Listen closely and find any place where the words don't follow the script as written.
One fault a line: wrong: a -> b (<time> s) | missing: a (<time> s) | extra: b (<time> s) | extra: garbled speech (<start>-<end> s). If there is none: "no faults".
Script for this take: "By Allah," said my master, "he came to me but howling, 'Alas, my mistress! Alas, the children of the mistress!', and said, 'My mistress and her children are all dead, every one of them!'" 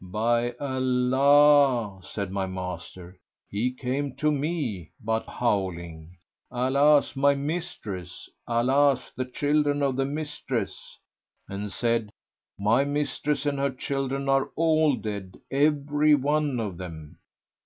no faults